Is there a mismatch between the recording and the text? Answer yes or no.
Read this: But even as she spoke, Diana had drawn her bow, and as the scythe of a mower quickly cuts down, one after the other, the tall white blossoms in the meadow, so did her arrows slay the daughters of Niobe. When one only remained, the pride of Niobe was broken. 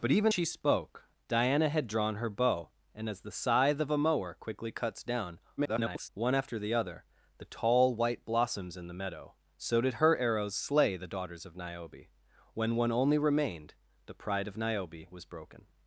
yes